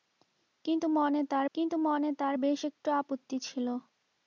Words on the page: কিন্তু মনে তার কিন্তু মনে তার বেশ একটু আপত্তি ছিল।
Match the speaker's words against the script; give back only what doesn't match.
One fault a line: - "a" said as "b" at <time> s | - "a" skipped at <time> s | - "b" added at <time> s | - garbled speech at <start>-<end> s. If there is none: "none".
none